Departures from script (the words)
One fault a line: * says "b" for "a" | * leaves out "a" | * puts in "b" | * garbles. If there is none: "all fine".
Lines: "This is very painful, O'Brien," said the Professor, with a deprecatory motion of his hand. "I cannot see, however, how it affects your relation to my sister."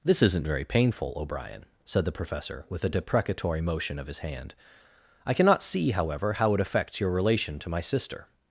* says "isn't" for "is"